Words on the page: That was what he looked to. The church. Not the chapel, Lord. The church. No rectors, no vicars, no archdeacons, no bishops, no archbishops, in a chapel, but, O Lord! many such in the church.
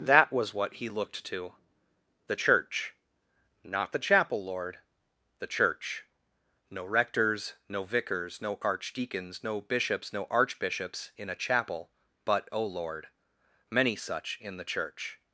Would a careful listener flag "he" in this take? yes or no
no